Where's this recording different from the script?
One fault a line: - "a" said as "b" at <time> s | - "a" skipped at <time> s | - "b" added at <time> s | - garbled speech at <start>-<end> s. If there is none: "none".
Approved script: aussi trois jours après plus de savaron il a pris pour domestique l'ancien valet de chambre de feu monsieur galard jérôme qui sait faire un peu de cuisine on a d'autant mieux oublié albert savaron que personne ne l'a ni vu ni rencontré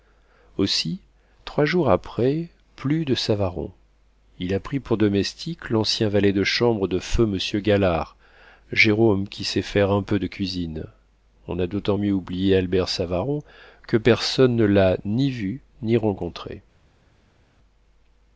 none